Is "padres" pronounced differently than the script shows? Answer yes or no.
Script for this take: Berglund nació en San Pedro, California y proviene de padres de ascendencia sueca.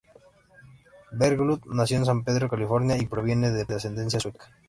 yes